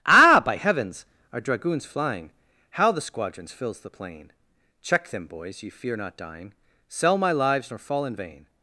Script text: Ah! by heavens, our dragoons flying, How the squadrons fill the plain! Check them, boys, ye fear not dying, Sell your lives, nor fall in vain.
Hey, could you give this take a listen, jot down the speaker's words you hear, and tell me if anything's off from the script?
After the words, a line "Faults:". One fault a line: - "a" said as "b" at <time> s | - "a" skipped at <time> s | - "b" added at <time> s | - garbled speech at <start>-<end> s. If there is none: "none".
Ah! by heavens, our dragoons flying, How the squadrons fills the plain! Check them, boys, ye fear not dying, Sell my lives, nor fall in vain.
Faults:
- "fill" said as "fills" at 3.5 s
- "your" said as "my" at 7.2 s